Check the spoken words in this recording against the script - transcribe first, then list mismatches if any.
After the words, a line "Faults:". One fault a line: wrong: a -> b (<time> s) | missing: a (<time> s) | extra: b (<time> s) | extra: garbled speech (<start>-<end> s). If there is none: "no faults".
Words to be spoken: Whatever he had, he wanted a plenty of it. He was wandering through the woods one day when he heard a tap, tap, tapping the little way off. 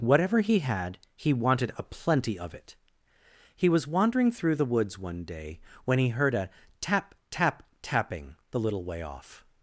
Whatever he had, he wanted a plenty of it. He was wandering through the woods one day when he heard a tap, tap, tapping the little way off.
Faults:
no faults